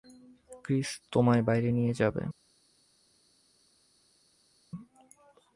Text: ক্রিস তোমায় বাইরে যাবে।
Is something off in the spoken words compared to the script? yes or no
yes